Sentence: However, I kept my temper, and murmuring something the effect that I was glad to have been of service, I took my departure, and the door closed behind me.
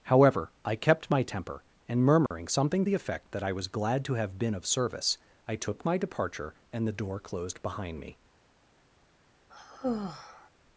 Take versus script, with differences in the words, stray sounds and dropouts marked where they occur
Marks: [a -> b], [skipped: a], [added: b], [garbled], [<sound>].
However, I kept my temper, and murmuring [dropout] something the effect that I was glad to have been of service, I took my departure, and the door closed behind me. [sigh]